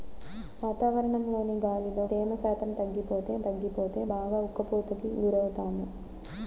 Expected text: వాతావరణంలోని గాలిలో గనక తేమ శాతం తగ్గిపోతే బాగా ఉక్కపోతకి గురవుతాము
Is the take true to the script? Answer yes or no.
no